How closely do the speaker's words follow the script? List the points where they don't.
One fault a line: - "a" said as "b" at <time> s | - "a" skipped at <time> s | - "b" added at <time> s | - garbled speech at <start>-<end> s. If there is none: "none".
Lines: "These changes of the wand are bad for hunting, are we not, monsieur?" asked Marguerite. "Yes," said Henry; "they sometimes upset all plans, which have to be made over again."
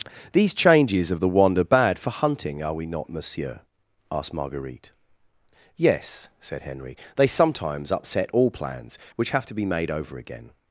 none